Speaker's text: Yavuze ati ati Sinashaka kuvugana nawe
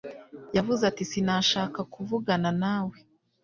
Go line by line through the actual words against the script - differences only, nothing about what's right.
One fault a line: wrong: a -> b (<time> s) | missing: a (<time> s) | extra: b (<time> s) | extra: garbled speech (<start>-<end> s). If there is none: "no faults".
missing: ati (1.0 s)